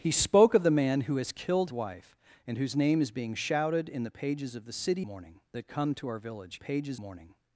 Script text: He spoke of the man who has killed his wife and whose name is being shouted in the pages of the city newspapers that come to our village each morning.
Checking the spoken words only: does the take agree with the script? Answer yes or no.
no